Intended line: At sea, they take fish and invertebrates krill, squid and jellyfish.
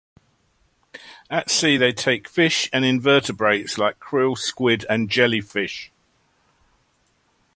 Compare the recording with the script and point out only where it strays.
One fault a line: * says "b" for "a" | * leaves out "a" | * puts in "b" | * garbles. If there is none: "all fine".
* puts in "like"